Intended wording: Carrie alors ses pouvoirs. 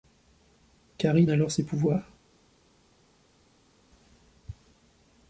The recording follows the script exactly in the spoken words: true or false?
true